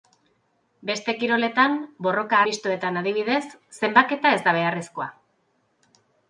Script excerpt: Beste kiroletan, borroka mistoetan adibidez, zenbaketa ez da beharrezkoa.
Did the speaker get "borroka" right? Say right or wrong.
right